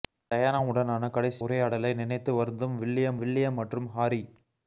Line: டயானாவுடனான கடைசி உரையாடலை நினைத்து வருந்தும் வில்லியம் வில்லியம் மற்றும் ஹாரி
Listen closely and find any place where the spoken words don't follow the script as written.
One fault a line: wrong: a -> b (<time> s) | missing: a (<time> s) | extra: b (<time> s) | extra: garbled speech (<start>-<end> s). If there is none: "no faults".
no faults